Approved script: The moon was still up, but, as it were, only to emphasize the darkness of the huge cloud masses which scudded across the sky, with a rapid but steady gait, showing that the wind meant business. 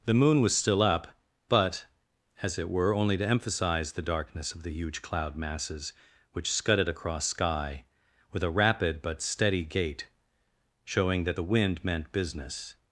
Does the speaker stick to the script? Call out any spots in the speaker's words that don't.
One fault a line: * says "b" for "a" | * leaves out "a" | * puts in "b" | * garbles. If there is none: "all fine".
* leaves out "the"